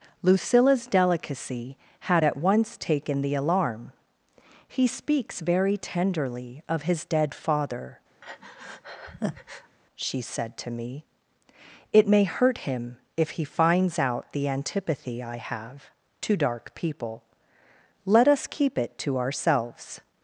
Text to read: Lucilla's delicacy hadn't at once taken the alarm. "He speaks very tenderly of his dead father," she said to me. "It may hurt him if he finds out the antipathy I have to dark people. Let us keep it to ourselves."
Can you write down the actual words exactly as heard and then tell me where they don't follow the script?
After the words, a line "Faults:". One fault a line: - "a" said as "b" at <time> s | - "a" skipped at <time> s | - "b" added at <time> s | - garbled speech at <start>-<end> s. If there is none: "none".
Lucilla's delicacy had at once taken the alarm. "He speaks very tenderly of his dead father," she said to me. "It may hurt him if he finds out the antipathy I have to dark people. Let us keep it to ourselves."
Faults:
- "hadn't" said as "had" at 2.0 s